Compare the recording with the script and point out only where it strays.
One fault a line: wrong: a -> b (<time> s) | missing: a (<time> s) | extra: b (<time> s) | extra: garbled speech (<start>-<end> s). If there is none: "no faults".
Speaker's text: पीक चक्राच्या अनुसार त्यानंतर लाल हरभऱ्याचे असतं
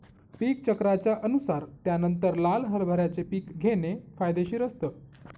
extra: पीक घेणे फायदेशीर (3.2 s)